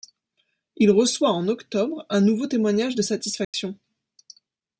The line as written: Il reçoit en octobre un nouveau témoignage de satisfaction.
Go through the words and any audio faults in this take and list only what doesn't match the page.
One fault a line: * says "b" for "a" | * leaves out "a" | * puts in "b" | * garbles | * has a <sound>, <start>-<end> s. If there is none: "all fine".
* has a dropout, 3.4-3.5 s